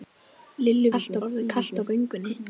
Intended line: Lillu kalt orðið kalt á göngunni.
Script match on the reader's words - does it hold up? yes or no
yes